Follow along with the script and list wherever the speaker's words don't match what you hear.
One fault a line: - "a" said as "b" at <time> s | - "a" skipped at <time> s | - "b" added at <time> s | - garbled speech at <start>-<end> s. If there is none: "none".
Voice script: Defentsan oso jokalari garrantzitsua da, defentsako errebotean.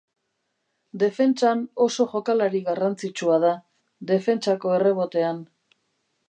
none